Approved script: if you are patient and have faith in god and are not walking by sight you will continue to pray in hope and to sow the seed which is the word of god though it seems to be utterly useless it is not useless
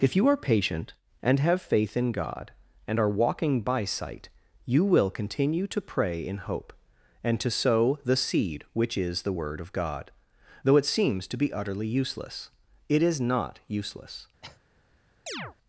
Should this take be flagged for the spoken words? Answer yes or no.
yes